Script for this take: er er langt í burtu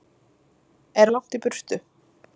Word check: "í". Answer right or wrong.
right